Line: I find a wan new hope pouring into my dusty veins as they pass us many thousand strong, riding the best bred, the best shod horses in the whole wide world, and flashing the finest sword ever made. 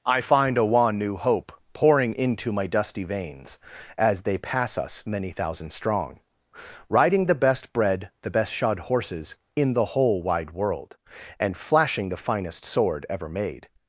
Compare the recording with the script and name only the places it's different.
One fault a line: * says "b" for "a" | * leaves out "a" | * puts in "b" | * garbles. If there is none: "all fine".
all fine